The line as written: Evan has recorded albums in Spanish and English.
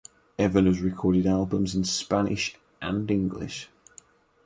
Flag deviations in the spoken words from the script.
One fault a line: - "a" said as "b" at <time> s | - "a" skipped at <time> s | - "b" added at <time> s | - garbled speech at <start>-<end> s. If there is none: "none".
none